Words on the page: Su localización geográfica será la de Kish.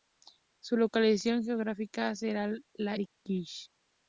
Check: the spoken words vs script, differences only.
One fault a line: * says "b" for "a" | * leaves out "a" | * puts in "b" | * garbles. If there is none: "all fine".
all fine